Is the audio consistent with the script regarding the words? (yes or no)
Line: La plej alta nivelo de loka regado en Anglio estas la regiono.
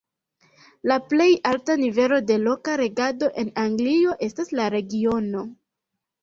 yes